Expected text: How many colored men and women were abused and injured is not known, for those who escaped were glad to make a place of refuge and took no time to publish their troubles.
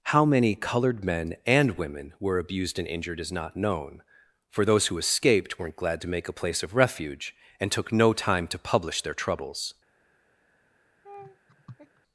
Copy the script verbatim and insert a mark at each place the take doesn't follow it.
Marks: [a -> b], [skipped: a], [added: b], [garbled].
How many colored men and women were abused and injured is not known, for those who escaped [were -> weren't] glad to make a place of refuge and took no time to publish their troubles.